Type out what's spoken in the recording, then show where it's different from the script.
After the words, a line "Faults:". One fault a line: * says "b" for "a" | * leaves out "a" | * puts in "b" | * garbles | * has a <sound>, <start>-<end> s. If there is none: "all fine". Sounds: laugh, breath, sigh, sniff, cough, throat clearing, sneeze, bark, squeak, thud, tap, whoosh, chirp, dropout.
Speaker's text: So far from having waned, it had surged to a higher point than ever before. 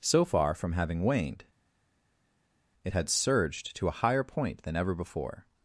So far from having waned, it had surged to a higher point than ever before.
Faults:
all fine